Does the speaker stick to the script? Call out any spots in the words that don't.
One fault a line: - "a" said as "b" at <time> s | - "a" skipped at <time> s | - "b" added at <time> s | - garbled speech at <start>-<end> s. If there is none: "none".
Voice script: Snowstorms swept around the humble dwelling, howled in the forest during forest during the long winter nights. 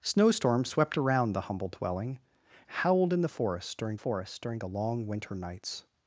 none